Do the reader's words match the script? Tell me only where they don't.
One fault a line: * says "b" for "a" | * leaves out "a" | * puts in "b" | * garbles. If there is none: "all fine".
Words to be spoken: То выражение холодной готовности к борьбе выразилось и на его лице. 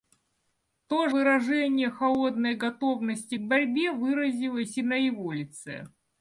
all fine